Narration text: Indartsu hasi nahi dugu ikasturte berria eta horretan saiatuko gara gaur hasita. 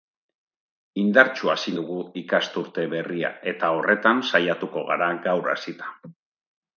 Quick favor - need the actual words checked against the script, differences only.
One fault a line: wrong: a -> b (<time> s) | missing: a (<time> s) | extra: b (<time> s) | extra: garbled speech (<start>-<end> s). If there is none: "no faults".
missing: nahi (1.7 s)